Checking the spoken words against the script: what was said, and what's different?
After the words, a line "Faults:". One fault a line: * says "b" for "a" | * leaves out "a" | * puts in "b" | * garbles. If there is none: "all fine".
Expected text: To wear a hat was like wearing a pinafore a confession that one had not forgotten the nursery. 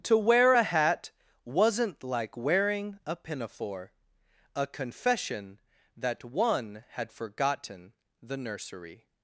To wear a hat wasn't like wearing a pinafore a confession that one had forgotten the nursery.
Faults:
* says "wasn't" for "was"
* leaves out "not"